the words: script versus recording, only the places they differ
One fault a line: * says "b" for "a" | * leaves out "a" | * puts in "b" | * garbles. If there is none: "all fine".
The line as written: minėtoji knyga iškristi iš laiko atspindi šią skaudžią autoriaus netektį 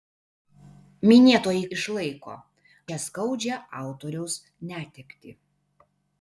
* leaves out "knyga iškristi"
* leaves out "atspindi"